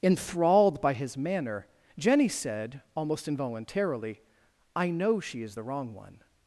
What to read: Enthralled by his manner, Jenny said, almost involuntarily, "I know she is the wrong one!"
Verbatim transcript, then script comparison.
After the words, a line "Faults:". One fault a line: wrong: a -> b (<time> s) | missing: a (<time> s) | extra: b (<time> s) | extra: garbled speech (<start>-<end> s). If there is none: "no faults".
Enthralled by his manner, Jenny said, almost involuntarily, "I know she is the wrong one!"
Faults:
no faults